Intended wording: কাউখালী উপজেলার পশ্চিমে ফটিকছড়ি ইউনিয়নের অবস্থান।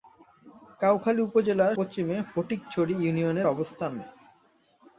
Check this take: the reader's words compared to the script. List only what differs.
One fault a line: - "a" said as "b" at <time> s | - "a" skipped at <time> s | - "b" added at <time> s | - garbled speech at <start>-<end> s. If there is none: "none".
none